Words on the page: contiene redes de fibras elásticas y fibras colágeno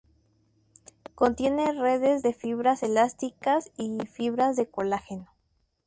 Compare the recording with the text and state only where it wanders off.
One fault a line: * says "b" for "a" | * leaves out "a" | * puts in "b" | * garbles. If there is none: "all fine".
* puts in "de"